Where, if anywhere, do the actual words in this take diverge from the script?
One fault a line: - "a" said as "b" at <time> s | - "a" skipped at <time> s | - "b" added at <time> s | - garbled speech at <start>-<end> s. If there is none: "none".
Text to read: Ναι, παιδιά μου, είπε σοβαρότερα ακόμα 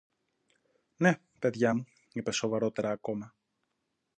none